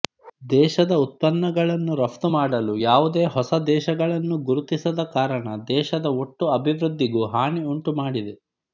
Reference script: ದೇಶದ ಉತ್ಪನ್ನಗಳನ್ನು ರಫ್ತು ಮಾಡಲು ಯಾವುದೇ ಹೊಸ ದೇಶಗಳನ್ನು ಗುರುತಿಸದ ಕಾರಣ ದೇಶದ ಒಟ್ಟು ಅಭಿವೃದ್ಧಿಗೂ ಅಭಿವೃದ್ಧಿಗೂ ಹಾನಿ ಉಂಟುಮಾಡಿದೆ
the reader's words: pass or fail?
fail